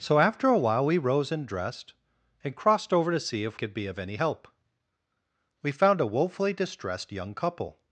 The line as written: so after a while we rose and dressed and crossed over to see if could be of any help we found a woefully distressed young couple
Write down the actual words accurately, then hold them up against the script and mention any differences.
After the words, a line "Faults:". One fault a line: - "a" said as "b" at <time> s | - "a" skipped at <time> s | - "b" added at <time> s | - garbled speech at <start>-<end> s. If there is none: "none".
so after a while we rose and dressed and crossed over to see if could be of any help we found a woefully distressed young couple
Faults:
none